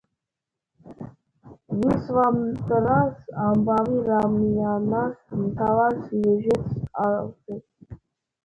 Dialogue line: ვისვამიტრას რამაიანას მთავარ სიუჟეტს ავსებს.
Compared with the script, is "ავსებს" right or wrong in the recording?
right